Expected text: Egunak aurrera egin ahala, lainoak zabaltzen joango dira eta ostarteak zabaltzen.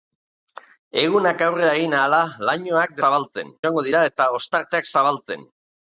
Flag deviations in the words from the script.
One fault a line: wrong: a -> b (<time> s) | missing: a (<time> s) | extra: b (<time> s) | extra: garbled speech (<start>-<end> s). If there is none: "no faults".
no faults